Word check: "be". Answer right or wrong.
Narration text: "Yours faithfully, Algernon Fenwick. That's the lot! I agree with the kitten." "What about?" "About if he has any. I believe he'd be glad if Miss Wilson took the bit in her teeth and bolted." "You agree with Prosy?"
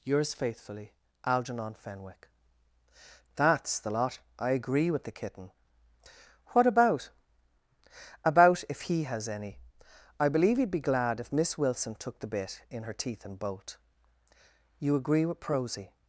right